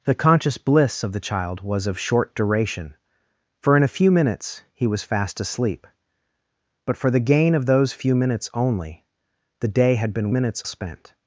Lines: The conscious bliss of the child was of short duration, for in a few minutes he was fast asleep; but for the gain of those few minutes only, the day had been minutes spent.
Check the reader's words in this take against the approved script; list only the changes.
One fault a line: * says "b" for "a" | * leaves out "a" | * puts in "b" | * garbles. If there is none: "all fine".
all fine